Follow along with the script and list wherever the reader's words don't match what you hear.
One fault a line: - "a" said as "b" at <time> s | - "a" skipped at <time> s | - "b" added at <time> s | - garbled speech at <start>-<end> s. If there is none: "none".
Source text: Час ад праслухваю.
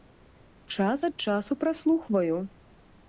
- "часу" added at 1.2 s